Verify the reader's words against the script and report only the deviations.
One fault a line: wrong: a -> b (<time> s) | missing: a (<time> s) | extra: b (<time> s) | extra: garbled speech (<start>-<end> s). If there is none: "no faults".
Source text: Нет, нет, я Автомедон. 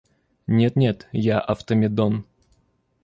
no faults